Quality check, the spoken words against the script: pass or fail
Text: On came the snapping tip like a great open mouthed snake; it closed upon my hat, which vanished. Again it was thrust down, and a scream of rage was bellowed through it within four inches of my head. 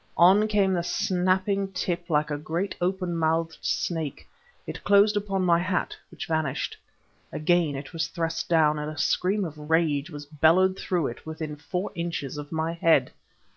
pass